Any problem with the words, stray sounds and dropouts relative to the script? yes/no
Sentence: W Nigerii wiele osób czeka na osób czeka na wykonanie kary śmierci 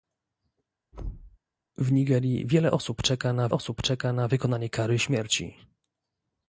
yes